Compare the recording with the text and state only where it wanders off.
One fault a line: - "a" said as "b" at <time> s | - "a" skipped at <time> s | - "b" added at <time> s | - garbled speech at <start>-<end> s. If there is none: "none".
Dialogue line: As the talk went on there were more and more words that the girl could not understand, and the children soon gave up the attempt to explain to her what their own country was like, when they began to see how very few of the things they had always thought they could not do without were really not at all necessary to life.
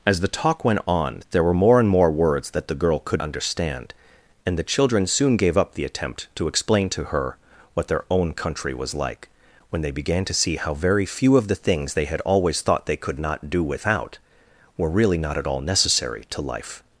- "not" skipped at 3.2 s